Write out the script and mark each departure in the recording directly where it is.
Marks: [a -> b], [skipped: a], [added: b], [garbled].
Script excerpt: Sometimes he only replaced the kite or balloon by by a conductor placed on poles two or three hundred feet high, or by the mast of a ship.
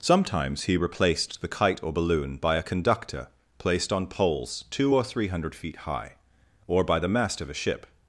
Sometimes he [skipped: only] replaced the kite or balloon by [skipped: by] a conductor placed on poles two or three hundred feet high, or by the mast of a ship.